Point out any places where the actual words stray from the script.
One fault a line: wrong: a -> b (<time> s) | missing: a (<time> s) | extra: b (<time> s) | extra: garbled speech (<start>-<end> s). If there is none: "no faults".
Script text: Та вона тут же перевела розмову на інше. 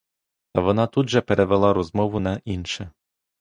no faults